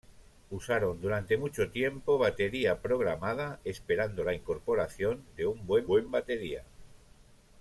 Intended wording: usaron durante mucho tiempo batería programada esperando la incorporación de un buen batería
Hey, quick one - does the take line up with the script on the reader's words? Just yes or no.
no